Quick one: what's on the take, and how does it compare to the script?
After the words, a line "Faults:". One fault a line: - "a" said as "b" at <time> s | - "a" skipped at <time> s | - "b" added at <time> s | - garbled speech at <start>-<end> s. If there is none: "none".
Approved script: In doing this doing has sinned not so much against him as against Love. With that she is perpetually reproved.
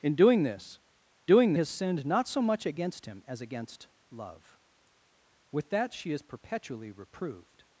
In doing this doing has sinned not so much against him as against Love. With that she is perpetually reproved.
Faults:
none